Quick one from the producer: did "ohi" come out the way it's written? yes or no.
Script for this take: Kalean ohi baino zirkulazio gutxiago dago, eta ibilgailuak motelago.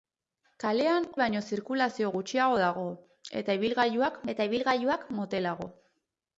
no